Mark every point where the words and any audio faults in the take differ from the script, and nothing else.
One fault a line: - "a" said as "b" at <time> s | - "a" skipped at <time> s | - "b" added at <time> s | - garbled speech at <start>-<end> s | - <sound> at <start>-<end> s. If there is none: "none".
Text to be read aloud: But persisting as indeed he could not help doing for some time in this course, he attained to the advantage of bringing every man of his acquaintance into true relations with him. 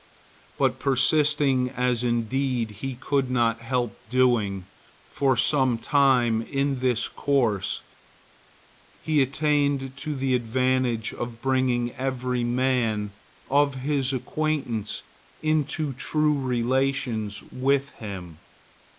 none